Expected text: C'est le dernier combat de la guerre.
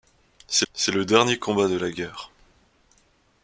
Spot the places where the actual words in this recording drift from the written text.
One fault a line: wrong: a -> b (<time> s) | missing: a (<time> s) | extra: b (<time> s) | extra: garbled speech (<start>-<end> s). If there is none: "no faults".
extra: c'est (0.7 s)